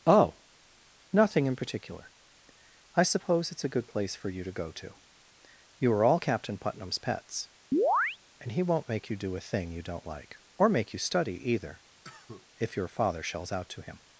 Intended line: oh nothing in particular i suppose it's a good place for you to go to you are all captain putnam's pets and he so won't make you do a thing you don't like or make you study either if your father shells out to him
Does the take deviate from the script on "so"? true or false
true